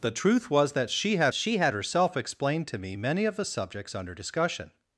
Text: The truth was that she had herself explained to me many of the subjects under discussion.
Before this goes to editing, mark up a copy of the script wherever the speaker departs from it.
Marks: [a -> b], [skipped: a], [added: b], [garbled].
The truth was that she had [added: she had] herself explained to me many of the subjects under discussion.